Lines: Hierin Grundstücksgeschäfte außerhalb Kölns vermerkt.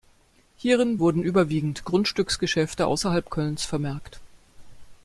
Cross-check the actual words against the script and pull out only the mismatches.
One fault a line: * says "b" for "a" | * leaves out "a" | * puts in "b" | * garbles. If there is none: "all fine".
* puts in "wurden überwiegend"